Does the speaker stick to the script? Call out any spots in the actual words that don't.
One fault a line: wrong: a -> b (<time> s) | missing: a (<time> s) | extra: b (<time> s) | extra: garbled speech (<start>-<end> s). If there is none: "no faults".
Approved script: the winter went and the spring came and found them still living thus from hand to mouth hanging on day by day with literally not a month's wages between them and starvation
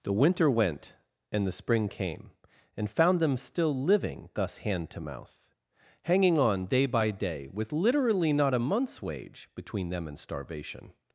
missing: from (4.6 s)
wrong: wages -> wage (9.0 s)